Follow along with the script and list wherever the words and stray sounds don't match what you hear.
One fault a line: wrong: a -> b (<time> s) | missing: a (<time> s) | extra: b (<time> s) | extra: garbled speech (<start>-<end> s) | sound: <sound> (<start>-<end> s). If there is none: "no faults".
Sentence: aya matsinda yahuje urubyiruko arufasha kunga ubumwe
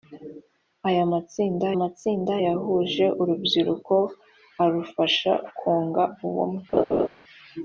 extra: matsinda (1.8 s)
sound: laugh (6.7-7.1 s)